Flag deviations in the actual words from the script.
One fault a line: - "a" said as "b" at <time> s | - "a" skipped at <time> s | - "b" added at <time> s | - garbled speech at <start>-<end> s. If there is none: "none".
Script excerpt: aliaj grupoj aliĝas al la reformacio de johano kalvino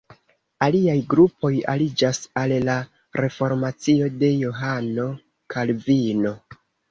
none